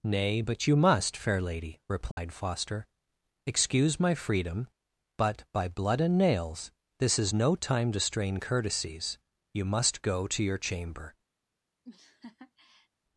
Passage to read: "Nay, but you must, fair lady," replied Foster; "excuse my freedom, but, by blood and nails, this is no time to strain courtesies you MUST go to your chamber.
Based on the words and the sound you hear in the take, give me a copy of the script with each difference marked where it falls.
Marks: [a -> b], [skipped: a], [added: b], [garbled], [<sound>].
"Nay, but you must, fair lady," replied [dropout] Foster; "excuse my freedom, but, by blood and nails, this is no time to strain courtesies you MUST go to your chamber. [laugh]